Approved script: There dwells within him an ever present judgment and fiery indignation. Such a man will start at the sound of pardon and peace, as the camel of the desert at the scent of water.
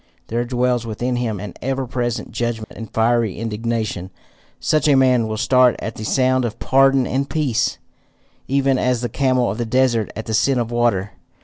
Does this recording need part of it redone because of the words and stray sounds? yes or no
yes